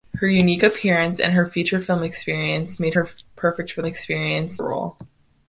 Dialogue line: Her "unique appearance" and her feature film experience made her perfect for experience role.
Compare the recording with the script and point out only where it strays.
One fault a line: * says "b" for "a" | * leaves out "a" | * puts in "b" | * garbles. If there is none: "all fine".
all fine